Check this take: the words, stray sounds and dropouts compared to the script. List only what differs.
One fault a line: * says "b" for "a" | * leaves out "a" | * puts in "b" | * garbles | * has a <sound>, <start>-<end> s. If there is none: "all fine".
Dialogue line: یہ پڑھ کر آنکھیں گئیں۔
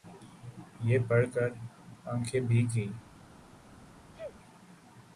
* puts in "بھیگ"
* has a sneeze, 4.1-4.4 s